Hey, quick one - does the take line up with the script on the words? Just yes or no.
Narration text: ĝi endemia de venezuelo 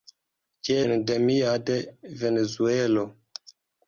yes